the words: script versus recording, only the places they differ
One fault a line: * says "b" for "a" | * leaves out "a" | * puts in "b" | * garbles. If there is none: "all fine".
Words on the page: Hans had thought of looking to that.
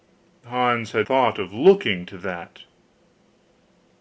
all fine